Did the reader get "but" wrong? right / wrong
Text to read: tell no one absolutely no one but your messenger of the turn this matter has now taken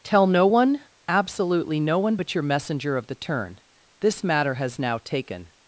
right